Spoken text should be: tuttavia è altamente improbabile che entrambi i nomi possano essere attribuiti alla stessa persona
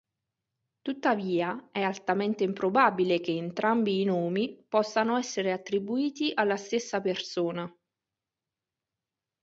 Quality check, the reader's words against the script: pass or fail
pass